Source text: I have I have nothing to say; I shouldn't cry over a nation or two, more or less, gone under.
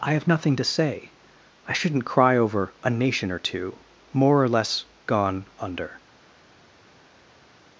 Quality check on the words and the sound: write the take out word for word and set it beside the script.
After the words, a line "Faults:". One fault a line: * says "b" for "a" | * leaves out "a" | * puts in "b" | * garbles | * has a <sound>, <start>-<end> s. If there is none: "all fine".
I have nothing to say; I shouldn't cry over a nation or two, more or less, gone under.
Faults:
* leaves out "I have"